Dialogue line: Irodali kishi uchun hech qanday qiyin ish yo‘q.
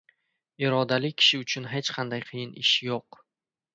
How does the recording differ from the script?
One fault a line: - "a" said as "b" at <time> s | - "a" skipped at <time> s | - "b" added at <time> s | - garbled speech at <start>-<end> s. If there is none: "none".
none